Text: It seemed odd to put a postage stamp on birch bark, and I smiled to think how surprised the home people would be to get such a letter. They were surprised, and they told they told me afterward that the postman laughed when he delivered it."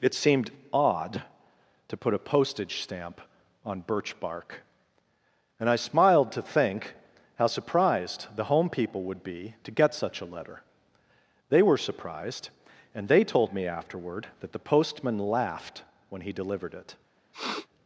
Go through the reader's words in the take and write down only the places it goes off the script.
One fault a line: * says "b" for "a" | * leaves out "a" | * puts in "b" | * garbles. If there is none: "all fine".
* leaves out "they told"